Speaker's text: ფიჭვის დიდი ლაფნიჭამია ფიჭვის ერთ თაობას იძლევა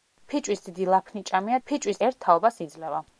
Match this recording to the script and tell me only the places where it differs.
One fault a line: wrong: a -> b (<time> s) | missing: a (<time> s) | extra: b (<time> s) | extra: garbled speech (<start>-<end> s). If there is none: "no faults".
no faults